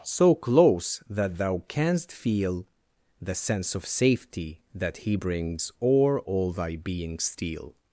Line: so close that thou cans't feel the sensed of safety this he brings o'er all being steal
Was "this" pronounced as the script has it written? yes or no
no